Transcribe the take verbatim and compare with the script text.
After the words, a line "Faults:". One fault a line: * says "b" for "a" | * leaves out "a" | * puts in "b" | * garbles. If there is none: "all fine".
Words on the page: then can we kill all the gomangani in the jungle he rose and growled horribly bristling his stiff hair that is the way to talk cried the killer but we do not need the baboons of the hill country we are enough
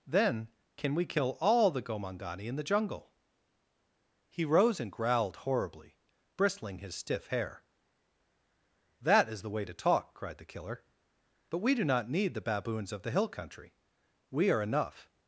then can we kill all the gomangani in the jungle he rose and growled horribly bristling his stiff hair that is the way to talk cried the killer but we do not need the baboons of the hill country we are enough
Faults:
all fine